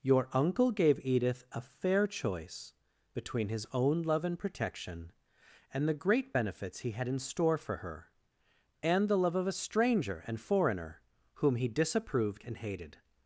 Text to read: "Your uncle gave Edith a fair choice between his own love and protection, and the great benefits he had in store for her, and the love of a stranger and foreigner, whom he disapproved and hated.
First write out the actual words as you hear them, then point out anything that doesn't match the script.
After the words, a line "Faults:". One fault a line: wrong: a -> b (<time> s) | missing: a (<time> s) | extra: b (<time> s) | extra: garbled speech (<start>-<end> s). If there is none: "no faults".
"Your uncle gave Edith a fair choice between his own love and protection, and the great benefits he had in store for her, and the love of a stranger and foreigner, whom he disapproved and hated.
Faults:
no faults